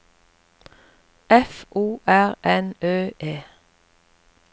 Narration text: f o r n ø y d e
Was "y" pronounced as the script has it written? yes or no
no